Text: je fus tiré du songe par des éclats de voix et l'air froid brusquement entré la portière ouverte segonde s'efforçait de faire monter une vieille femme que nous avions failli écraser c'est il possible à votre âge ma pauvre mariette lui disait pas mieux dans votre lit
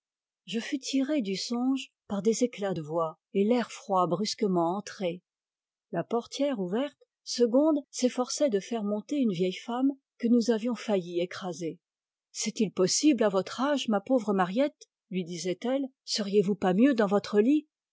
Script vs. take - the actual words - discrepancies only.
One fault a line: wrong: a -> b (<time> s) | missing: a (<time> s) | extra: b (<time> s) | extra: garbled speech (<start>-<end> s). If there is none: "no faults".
extra: elle seriez vous (15.6 s)